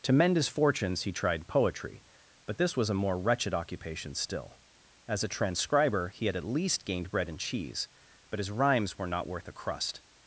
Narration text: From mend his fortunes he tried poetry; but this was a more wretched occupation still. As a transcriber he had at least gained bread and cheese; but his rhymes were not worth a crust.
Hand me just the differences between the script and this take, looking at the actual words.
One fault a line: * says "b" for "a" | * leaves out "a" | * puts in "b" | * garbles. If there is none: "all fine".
* says "To" for "From"